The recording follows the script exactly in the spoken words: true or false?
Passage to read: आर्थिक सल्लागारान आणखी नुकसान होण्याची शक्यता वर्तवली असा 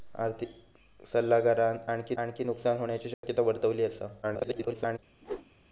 false